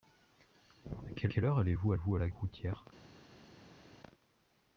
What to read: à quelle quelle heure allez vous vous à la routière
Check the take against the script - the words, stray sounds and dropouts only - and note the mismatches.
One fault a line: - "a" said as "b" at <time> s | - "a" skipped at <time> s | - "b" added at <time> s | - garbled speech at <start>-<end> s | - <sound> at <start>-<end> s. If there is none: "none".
none